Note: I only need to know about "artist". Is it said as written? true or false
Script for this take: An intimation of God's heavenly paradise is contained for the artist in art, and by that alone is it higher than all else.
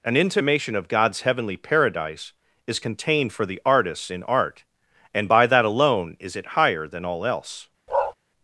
false